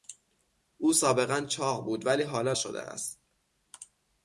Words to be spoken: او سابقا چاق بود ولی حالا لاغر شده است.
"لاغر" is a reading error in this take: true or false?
true